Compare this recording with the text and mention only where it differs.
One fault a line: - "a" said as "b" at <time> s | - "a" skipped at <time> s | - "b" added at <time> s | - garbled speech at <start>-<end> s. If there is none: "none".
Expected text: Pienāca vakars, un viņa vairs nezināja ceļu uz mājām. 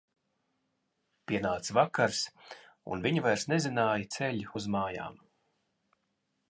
none